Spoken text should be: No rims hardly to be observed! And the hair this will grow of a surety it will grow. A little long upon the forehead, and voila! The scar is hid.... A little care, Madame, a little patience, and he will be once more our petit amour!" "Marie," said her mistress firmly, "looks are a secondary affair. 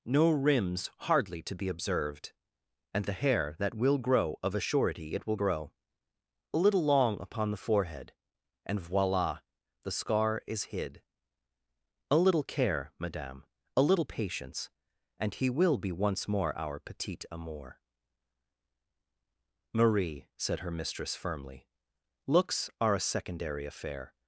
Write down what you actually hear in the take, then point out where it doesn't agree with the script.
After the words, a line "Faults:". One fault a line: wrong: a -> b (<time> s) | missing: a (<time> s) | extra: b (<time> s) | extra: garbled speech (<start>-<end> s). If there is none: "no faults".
No rims hardly to be observed! And the hair that will grow of a surety it will grow. A little long upon the forehead, and voila! The scar is hid.... A little care, Madame, a little patience, and he will be once more our petit amour!" "Marie," said her mistress firmly, "looks are a secondary affair.
Faults:
wrong: this -> that (3.6 s)